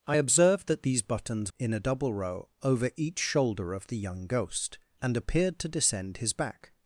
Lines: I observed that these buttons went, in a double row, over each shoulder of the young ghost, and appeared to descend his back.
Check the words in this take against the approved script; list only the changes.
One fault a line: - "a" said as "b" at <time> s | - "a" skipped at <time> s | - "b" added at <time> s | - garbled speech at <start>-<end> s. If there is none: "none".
- "went" skipped at 1.5 s